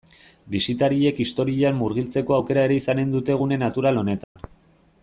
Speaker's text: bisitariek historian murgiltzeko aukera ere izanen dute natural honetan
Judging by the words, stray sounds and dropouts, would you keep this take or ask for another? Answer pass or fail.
fail